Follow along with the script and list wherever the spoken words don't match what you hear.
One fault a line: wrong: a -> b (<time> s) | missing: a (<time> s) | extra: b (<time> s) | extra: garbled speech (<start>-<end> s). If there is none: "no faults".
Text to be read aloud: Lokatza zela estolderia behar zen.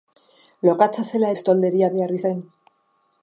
no faults